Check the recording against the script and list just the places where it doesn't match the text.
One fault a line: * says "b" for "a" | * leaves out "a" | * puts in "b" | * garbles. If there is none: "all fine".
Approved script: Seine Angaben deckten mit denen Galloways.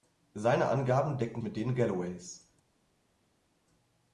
all fine